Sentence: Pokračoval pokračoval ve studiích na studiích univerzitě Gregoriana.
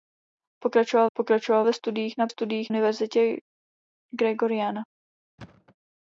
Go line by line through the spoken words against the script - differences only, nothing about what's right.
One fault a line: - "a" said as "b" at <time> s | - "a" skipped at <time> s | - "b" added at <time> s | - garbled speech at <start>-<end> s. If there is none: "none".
none